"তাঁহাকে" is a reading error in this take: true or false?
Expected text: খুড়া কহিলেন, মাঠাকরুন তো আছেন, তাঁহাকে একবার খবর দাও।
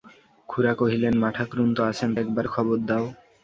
true